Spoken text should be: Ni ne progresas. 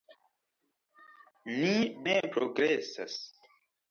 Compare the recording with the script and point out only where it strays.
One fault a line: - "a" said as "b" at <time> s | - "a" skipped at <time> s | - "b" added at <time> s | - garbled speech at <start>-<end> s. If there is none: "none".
none